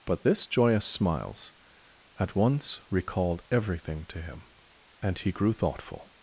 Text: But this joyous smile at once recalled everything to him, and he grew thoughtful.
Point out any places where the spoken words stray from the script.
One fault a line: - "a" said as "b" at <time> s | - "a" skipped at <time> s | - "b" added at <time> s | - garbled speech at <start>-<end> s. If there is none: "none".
- "smile" said as "smiles" at 0.8 s